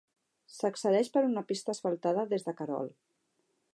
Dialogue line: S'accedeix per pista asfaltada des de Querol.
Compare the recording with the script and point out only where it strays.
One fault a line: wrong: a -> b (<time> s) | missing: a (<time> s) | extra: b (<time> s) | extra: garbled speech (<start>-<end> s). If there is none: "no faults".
extra: una (1.3 s)